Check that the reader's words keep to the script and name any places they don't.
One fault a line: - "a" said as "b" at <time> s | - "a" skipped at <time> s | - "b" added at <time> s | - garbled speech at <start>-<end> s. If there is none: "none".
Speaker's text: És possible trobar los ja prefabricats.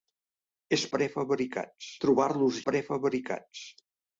- "possible" said as "prefabricats" at 1.0 s
- "ja" skipped at 2.6 s